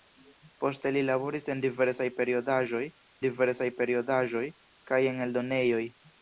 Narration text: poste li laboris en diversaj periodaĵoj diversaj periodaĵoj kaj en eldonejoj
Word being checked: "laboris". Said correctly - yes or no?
yes